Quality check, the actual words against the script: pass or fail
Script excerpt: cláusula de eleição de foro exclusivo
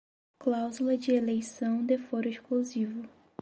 pass